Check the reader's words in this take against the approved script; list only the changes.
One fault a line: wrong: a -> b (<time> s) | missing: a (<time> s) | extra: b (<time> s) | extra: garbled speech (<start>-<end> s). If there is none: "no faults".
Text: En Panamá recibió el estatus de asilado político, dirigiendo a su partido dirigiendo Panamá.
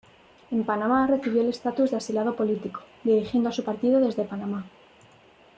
wrong: dirigiendo -> desde (4.0 s)